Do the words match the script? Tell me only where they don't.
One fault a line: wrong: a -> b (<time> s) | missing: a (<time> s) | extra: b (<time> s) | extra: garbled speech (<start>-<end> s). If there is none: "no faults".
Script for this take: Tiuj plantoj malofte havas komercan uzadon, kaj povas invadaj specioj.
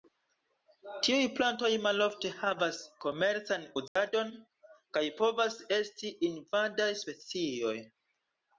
extra: esti (5.8 s)